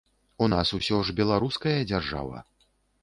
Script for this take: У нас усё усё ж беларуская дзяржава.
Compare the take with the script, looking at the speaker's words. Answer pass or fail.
fail